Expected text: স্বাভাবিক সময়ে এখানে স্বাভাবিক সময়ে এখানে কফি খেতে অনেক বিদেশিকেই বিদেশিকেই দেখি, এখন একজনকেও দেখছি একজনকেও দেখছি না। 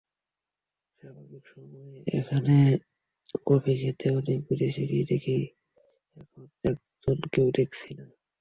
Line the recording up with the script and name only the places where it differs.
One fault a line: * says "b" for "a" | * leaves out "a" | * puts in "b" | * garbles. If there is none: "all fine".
* leaves out "স্বাভাবিক সময়ে এখানে"
* leaves out "বিদেশিকেই"
* leaves out "একজনকেও দেখছি"